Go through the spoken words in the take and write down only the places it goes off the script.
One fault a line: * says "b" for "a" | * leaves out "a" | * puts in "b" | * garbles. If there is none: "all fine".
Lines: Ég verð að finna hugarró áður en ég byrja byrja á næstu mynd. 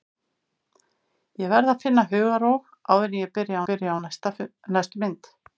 all fine